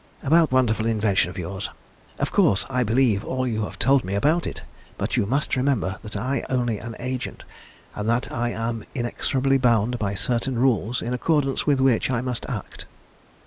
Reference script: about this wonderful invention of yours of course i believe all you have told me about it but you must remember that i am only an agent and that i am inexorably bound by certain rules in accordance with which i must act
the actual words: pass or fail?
fail